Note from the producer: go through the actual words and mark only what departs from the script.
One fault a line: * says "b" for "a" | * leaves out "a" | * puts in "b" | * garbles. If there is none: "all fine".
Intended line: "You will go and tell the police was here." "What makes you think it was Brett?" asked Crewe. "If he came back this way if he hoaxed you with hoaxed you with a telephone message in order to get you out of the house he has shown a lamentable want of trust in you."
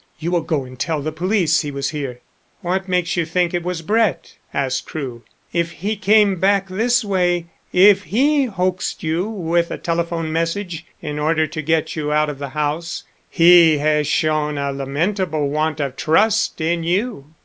* puts in "he"
* leaves out "hoaxed you with"